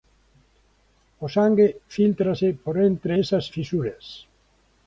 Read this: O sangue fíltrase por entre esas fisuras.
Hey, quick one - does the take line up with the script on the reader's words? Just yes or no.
yes